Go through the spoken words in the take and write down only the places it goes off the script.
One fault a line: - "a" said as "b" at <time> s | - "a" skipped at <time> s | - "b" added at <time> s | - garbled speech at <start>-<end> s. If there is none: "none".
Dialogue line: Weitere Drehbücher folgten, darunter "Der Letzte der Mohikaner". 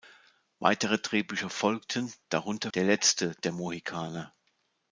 none